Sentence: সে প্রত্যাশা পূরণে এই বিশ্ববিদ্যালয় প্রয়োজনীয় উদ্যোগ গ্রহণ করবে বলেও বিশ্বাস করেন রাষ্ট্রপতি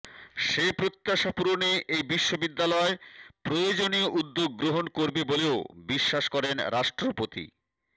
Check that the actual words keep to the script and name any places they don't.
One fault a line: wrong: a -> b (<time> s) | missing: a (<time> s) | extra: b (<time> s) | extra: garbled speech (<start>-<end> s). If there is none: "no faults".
no faults